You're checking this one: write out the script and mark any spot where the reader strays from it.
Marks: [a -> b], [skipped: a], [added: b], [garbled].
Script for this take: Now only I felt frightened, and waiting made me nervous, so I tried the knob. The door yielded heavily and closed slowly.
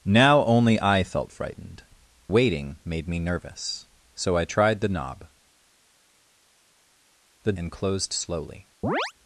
Now only I felt frightened, [skipped: and] waiting made me nervous, so I tried the knob. The [skipped: door yielded heavily] and closed slowly.